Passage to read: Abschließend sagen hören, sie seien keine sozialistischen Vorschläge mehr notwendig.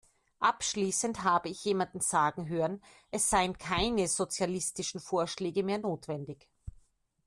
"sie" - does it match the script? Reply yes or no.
no